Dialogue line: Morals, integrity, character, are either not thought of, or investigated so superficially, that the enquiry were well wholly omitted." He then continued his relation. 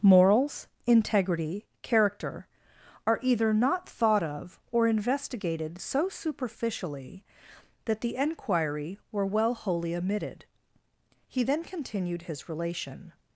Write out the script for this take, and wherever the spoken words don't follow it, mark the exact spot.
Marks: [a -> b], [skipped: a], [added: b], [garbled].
Morals, integrity, character, are either not thought of, or investigated so superficially, that the enquiry were well wholly omitted." He then continued his relation.